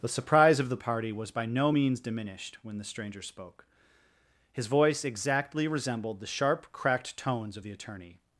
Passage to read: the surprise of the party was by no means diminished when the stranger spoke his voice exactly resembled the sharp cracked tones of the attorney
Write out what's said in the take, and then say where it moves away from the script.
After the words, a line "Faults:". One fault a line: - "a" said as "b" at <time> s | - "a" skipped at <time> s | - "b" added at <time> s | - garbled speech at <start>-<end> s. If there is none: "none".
the surprise of the party was by no means diminished when the stranger spoke his voice exactly resembled the sharp cracked tones of the attorney
Faults:
none